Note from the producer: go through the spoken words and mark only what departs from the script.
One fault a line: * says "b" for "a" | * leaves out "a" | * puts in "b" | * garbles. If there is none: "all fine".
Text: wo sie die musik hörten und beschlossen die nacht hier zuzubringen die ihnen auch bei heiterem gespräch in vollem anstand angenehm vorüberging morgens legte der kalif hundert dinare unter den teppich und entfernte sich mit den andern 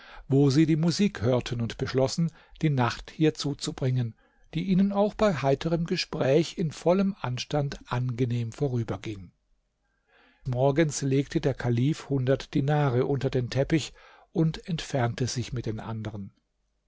all fine